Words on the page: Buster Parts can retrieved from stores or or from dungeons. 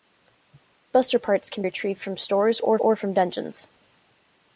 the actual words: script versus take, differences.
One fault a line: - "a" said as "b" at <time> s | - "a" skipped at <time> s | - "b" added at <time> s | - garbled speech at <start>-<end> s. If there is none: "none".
none